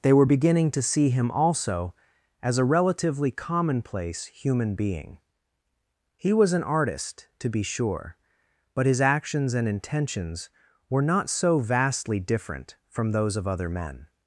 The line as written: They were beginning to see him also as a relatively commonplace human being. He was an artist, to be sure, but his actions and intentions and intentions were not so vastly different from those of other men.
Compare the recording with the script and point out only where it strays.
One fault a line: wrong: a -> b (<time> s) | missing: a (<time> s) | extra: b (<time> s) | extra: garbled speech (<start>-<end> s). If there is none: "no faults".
missing: and intentions (10.5 s)